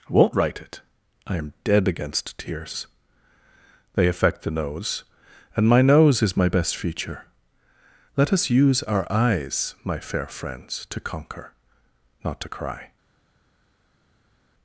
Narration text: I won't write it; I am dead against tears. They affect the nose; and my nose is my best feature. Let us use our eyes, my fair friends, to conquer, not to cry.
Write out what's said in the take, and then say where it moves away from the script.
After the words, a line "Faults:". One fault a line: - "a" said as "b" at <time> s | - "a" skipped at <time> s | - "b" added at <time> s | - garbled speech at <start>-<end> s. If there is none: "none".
I won't write it; I am dead against tears. They affect the nose; and my nose is my best feature. Let us use our eyes, my fair friends, to conquer, not to cry.
Faults:
none